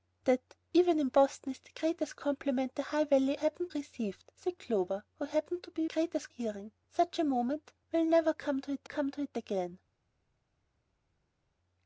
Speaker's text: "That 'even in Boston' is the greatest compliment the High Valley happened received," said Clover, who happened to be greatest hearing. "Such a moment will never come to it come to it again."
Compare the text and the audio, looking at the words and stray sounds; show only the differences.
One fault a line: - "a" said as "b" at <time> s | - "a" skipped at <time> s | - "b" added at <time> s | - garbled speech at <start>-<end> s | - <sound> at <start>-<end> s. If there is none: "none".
none